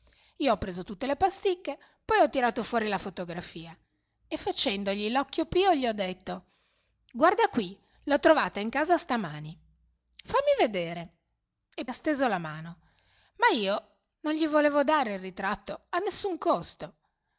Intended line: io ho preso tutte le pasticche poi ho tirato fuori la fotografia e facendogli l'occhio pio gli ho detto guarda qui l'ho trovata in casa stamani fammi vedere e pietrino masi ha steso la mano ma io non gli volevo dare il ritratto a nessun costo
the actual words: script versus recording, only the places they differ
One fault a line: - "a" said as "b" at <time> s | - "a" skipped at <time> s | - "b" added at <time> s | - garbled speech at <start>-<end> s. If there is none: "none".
- "pietrino masi" skipped at 11.8 s